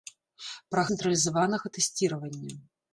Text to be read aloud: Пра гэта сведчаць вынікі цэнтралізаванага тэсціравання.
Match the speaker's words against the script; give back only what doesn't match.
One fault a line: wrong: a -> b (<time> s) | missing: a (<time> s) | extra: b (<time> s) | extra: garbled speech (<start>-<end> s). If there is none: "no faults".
missing: гэта сведчаць вынікі (0.8 s)